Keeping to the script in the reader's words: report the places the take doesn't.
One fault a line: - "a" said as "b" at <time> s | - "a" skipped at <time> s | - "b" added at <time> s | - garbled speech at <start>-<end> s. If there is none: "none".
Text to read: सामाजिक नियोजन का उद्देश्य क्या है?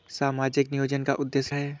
- "क्या" skipped at 1.5 s